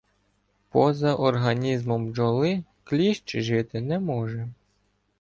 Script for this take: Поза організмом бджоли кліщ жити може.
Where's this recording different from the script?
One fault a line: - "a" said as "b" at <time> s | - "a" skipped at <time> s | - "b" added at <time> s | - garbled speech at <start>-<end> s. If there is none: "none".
- "не" added at 3.8 s